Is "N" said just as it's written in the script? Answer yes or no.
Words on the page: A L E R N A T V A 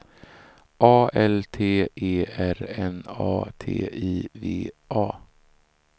yes